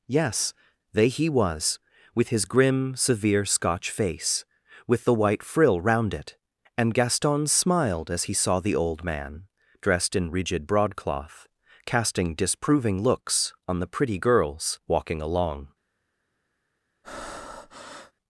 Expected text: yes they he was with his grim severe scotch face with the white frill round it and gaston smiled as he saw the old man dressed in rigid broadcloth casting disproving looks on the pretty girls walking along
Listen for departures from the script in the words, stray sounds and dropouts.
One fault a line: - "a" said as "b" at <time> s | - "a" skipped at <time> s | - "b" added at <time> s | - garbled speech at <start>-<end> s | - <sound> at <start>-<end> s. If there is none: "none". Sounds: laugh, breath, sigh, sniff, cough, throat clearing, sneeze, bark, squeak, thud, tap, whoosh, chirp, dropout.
- breath at 17.0-18.1 s